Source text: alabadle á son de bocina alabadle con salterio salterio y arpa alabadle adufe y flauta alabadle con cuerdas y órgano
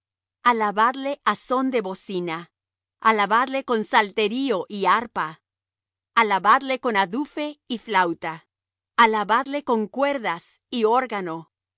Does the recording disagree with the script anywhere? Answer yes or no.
yes